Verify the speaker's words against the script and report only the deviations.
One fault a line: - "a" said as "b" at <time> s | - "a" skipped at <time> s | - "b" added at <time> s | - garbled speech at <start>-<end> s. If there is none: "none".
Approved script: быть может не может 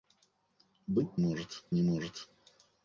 none